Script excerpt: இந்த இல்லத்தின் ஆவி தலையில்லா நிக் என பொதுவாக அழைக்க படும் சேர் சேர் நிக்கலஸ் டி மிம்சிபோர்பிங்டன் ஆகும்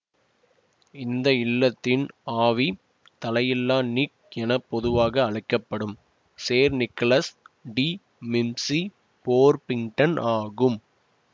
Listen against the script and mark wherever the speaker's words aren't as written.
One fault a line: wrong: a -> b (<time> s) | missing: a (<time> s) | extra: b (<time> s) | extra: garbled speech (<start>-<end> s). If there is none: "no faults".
missing: சேர் (6.7 s)